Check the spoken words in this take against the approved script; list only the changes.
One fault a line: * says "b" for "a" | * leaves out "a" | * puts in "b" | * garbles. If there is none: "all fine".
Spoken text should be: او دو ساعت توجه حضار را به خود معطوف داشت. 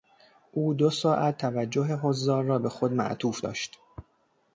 all fine